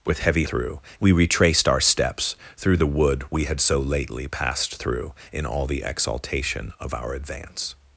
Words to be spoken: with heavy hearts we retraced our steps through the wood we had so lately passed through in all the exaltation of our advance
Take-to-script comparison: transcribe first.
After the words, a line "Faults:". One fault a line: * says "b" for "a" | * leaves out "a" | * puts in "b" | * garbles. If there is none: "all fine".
with heavy through we retraced our steps through the wood we had so lately passed through in all the exaltation of our advance
Faults:
* says "through" for "hearts"